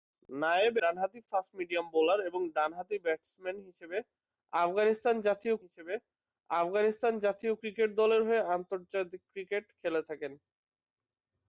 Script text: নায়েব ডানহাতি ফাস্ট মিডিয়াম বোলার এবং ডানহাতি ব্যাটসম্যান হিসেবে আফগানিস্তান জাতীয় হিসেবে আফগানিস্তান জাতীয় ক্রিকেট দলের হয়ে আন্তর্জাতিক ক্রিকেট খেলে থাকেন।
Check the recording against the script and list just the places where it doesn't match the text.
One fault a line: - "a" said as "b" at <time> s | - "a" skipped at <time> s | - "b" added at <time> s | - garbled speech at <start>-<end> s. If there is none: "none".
none